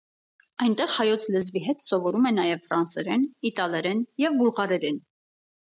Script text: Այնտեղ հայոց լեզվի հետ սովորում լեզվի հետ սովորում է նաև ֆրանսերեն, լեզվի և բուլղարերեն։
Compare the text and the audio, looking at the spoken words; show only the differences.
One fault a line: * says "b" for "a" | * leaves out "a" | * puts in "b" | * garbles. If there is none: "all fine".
* leaves out "լեզվի հետ սովորում"
* says "իտալերեն" for "լեզվի"